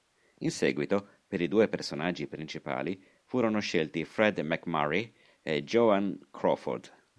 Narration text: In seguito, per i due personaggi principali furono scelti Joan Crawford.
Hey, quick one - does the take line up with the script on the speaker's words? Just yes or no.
no